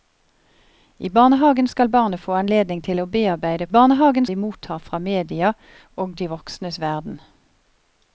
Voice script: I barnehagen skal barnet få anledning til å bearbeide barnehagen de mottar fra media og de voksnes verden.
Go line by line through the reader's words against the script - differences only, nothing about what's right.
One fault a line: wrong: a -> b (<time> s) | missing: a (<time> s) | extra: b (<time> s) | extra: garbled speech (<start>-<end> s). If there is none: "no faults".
no faults